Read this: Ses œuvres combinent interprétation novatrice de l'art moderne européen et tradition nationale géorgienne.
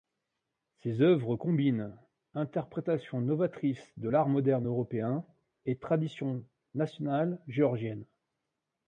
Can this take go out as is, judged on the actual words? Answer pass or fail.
pass